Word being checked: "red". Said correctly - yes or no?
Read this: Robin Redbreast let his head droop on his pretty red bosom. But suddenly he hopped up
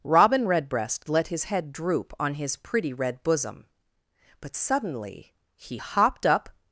yes